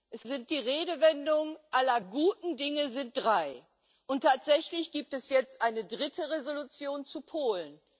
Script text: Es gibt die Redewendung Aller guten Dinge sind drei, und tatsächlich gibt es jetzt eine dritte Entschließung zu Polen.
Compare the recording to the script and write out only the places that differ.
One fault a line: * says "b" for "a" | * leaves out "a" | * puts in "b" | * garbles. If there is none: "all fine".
* says "sind" for "gibt"